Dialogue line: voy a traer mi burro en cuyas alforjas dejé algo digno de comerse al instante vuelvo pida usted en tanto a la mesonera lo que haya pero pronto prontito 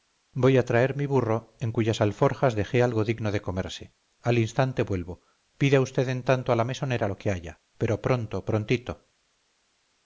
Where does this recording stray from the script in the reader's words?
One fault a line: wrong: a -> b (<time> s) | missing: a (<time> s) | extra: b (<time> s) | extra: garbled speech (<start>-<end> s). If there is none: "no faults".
no faults